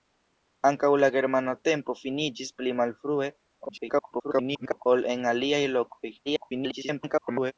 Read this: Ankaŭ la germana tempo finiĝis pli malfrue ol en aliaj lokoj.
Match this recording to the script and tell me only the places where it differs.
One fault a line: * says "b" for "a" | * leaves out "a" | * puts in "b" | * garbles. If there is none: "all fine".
* garbles
* garbles